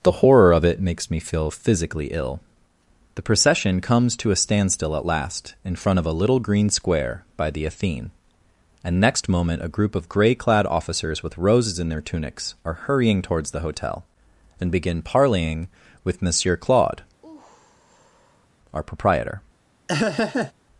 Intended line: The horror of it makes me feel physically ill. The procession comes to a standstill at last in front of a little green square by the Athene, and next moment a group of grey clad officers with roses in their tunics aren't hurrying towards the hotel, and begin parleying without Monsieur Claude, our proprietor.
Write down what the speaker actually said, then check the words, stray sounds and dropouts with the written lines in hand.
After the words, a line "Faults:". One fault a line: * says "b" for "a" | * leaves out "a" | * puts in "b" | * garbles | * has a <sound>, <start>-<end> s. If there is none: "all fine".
The horror of it makes me feel physically ill. The procession comes to a standstill at last in front of a little green square by the Athene, and next moment a group of grey clad officers with roses in their tunics are hurrying towards the hotel, and begin parleying with Monsieur Claude, our proprietor.
Faults:
* says "are" for "aren't"
* says "with" for "without"
* has a sigh, 17.2-18.5 s
* has a laugh, 19.9-20.5 s